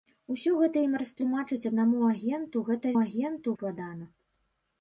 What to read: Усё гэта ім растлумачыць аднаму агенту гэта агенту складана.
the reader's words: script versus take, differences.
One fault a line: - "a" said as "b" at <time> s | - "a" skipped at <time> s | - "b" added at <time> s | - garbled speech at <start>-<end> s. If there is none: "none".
none